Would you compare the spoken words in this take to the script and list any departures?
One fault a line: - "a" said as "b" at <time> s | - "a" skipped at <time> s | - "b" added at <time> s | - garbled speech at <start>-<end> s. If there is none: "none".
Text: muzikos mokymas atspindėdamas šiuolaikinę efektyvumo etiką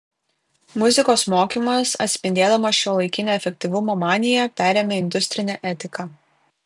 - "maniją perėmė industrinę" added at 4.0 s